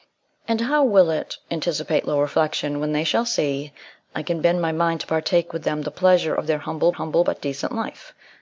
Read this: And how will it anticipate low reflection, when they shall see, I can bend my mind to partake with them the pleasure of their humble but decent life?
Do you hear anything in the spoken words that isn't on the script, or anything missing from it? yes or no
yes